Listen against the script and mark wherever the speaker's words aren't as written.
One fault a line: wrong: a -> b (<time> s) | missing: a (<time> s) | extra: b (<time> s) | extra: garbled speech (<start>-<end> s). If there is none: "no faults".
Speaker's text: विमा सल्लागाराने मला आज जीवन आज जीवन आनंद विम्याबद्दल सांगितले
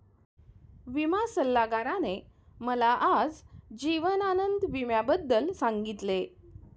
missing: आज जीवन (4.2 s)